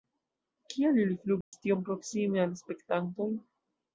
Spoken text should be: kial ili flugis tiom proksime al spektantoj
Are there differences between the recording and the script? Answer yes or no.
no